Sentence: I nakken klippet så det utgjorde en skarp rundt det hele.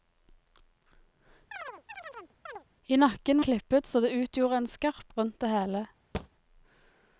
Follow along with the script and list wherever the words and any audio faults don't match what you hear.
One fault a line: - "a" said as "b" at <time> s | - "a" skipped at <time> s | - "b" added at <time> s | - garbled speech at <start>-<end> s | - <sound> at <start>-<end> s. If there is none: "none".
- chirp at 1.5-2.6 s
- thud at 6.1-6.3 s